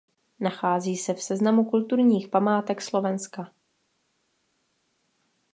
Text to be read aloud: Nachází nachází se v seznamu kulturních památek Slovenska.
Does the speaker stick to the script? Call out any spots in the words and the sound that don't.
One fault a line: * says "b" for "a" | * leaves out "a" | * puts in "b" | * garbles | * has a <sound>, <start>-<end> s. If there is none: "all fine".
* leaves out "nachází"